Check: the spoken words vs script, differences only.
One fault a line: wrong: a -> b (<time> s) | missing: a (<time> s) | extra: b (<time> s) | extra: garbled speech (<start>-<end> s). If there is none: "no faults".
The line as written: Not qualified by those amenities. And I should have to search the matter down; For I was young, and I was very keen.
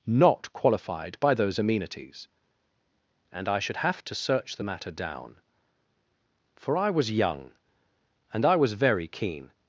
no faults